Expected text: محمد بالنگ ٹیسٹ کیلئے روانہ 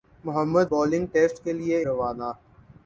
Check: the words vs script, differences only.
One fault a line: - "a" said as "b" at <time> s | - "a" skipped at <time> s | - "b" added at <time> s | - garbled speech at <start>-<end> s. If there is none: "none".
none